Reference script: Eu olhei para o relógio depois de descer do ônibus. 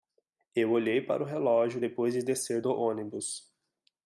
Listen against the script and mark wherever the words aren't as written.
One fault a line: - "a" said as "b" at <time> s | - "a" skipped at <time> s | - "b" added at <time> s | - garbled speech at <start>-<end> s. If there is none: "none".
none